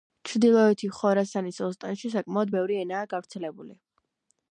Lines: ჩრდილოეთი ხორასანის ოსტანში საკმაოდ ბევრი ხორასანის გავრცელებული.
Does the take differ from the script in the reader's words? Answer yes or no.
yes